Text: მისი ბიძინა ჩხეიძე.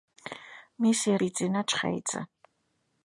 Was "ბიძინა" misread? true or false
false